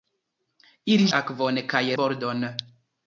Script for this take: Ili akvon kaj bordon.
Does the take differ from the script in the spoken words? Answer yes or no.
no